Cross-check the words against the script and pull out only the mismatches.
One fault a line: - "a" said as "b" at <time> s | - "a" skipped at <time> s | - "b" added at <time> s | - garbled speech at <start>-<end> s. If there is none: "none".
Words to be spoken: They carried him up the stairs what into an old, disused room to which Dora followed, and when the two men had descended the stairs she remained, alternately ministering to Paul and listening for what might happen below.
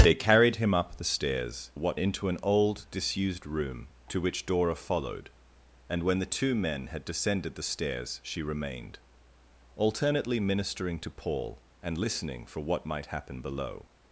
none